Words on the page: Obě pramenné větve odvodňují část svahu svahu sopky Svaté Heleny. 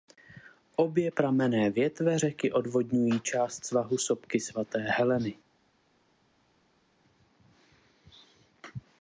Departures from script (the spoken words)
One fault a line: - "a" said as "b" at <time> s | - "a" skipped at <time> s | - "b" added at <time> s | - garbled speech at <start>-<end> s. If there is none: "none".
- "řeky" added at 2.2 s
- "svahu" skipped at 4.0 s